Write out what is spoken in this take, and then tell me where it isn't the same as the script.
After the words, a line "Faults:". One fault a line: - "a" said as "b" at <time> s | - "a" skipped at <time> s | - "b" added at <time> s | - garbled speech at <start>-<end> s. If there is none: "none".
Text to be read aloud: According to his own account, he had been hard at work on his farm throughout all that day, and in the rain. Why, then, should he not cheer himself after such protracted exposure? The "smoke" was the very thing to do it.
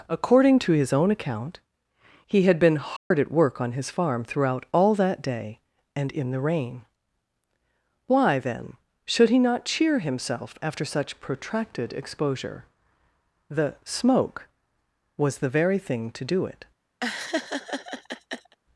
According to his own account, he had been hard at work on his farm throughout all that day, and in the rain. Why, then, should he not cheer himself after such protracted exposure? The "smoke" was the very thing to do it.
Faults:
none